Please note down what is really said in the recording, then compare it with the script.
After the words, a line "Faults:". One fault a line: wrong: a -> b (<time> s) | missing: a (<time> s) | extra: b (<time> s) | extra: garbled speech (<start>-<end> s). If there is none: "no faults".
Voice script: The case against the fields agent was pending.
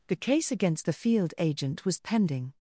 The case against the field agent was pending.
Faults:
wrong: fields -> field (0.9 s)